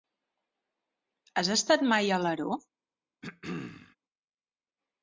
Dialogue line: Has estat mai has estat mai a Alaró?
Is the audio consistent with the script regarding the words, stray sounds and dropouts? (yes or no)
no